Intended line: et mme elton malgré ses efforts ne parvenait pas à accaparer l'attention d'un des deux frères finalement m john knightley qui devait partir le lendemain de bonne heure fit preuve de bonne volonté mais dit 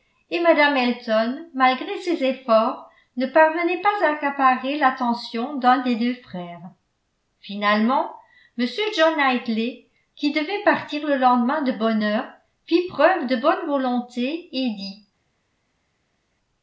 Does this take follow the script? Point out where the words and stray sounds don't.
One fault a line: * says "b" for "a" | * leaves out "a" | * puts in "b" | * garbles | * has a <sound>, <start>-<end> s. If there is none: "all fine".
* says "et" for "mais"